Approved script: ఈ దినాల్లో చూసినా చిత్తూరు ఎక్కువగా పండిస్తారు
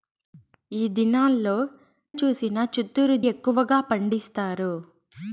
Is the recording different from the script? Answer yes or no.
no